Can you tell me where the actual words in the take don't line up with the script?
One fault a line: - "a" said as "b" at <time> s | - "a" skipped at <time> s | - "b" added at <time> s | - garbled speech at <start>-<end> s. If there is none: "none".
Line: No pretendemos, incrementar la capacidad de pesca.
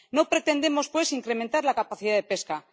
- "pues" added at 0.9 s